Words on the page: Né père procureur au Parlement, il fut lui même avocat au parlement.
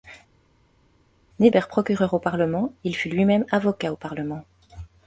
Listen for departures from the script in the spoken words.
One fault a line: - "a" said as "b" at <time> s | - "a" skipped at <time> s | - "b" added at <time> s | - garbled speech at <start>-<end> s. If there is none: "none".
none